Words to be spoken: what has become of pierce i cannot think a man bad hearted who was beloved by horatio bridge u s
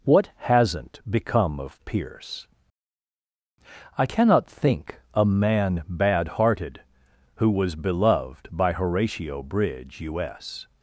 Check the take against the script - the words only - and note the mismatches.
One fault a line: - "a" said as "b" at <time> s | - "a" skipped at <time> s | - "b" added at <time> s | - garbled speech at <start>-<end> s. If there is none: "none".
- "has" said as "hasn't" at 0.4 s